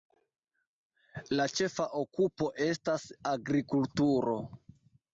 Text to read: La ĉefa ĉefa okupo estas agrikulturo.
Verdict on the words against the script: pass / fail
fail